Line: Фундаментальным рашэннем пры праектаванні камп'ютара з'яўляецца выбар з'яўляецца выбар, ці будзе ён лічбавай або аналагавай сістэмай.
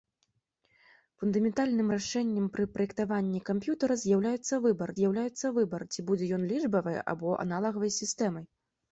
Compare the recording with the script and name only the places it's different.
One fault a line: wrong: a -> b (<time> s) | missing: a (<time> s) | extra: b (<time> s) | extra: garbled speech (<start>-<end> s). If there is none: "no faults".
no faults